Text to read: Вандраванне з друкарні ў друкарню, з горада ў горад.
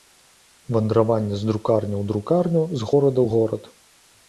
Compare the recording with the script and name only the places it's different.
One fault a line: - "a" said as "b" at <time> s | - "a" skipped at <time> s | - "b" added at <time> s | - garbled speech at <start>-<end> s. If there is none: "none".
none